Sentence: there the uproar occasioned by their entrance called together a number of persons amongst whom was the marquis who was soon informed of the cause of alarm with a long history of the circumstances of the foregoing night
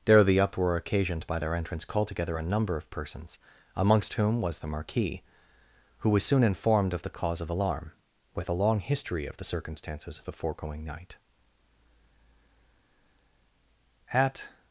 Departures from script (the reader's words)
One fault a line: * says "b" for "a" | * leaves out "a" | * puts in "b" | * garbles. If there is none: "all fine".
* puts in "at"